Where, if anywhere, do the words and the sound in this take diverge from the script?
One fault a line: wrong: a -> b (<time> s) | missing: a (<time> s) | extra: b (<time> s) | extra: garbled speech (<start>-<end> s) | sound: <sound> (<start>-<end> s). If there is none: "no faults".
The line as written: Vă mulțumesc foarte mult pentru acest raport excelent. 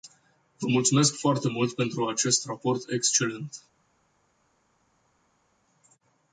no faults